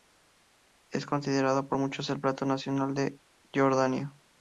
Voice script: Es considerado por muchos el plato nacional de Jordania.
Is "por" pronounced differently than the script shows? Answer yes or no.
no